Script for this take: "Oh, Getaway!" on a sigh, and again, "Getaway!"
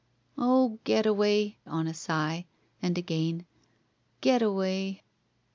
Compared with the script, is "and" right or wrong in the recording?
right